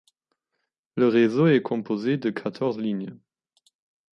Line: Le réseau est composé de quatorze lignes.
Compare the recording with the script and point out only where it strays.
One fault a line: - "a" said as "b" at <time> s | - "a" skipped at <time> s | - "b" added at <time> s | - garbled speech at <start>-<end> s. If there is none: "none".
none